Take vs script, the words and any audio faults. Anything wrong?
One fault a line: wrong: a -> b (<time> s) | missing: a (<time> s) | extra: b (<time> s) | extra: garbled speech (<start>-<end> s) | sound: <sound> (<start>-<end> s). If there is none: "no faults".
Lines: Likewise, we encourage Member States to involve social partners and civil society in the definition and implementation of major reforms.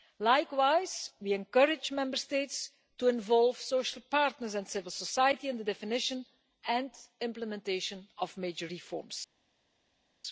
no faults